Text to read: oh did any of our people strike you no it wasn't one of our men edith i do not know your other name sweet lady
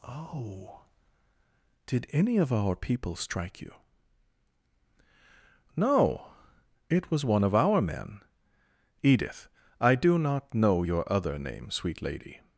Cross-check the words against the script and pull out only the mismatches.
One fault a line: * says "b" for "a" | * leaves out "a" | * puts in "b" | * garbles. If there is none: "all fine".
* says "was" for "wasn't"